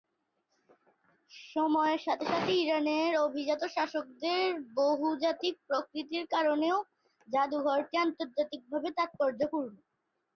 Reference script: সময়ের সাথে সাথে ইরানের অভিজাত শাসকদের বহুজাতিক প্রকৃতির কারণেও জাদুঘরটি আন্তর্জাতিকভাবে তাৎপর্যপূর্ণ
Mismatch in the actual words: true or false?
false